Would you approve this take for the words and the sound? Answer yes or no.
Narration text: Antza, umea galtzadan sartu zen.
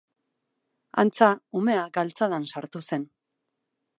yes